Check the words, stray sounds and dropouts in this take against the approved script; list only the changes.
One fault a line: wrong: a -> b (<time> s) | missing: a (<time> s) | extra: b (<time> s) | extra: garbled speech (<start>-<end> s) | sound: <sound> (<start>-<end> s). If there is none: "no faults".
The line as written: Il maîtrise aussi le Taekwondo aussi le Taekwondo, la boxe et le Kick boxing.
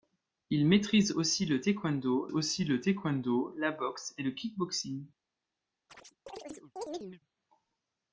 sound: chirp (5.9-7.2 s)